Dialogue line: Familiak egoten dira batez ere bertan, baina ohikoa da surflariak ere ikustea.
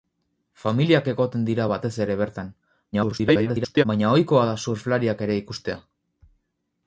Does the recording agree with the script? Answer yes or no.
no